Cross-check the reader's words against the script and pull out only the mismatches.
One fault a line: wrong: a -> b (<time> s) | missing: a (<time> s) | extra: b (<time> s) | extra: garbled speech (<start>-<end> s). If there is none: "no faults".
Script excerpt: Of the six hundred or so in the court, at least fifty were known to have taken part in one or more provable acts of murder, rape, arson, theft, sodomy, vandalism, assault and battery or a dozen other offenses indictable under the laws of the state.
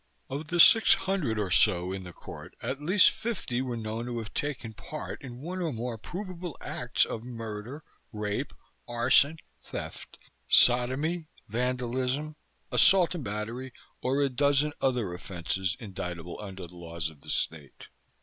no faults